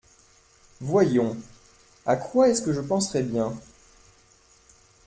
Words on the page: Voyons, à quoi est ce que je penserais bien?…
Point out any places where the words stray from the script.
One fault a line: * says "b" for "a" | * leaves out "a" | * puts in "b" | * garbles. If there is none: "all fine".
all fine